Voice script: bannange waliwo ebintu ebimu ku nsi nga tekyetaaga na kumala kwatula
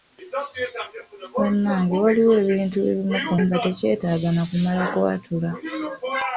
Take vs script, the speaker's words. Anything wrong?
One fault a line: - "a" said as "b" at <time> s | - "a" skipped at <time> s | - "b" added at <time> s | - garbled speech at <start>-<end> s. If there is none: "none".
- "nsi" skipped at 3.3 s